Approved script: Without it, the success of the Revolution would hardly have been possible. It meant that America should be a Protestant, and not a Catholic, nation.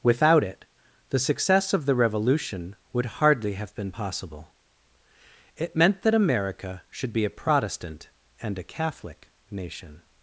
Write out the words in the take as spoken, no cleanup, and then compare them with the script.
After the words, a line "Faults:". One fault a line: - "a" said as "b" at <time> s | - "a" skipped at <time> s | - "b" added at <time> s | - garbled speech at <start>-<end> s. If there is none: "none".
Without it, the success of the Revolution would hardly have been possible. It meant that America should be a Protestant, and a Catholic, nation.
Faults:
- "not" skipped at 8.6 s